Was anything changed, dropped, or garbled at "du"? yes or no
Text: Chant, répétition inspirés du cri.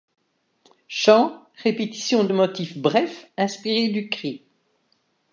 no